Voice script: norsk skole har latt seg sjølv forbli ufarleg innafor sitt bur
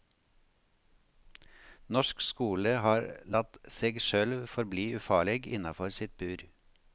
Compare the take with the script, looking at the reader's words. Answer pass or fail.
pass